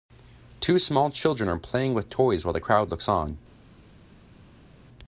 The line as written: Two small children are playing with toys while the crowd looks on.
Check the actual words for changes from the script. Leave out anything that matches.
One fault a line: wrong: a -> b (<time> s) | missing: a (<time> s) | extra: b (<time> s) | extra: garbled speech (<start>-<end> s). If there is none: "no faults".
no faults